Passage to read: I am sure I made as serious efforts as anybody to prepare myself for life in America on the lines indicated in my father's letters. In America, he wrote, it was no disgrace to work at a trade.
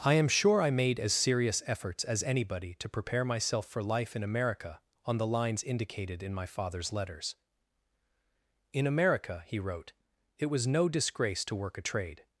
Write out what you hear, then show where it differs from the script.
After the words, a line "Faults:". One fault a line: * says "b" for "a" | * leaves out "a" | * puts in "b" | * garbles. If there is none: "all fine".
I am sure I made as serious efforts as anybody to prepare myself for life in America on the lines indicated in my father's letters. In America, he wrote, it was no disgrace to work a trade.
Faults:
* leaves out "at"